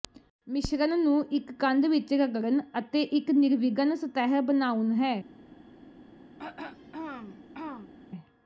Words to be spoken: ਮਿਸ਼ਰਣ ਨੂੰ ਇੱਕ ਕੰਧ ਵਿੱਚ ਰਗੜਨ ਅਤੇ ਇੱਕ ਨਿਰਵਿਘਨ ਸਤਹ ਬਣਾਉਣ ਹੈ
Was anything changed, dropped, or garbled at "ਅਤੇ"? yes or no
no